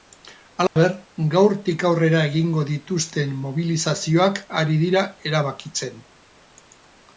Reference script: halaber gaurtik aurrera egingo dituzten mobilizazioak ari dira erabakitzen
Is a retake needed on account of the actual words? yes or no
no